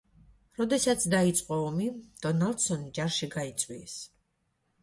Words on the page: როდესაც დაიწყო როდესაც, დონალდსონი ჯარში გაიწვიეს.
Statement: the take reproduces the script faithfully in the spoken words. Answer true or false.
false